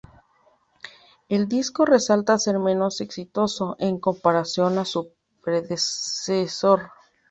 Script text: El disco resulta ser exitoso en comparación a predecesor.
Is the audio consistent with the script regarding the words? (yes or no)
no